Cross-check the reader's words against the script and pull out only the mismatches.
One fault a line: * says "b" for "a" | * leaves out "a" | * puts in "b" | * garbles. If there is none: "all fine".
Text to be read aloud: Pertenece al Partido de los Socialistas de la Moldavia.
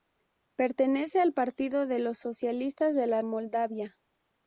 all fine